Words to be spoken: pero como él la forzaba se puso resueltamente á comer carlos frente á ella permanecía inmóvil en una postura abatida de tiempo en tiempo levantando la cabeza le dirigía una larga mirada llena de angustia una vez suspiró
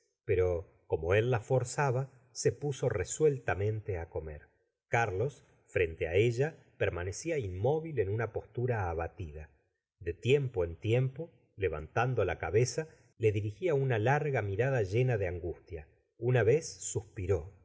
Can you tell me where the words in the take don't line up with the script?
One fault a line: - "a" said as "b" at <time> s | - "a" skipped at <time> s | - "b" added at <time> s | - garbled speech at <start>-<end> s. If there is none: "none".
none